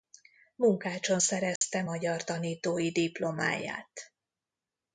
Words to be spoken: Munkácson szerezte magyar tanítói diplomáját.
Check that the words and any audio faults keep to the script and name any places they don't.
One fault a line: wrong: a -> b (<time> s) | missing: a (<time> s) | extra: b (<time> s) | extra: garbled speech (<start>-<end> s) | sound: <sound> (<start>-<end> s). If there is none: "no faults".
sound: dropout (1.6-1.6 s)